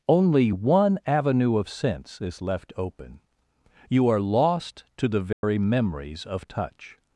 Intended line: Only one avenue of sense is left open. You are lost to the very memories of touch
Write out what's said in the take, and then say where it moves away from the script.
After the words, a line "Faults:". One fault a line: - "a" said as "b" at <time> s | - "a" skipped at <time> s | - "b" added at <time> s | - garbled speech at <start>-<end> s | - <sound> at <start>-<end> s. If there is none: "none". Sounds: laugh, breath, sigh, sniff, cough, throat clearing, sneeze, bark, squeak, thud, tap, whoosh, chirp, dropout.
Only one avenue of sense is left open. You are lost to the very memories of touch
Faults:
- dropout at 5.3-5.4 s